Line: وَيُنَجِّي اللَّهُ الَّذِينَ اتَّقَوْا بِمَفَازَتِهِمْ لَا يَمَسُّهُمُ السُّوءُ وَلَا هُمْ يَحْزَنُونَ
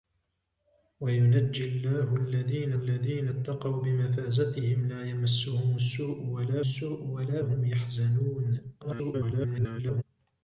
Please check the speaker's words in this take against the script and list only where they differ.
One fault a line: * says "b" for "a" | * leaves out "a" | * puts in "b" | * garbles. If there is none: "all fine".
* puts in "الَّذِينَ"
* puts in "السُّوءُ وَلَا"
* garbles